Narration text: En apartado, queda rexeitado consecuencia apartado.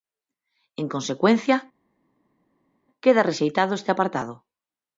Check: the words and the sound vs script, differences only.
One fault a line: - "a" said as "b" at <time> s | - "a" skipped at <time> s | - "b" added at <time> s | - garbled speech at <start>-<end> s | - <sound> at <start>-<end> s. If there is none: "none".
- "apartado" said as "consecuencia" at 0.9 s
- "consecuencia" said as "este" at 3.7 s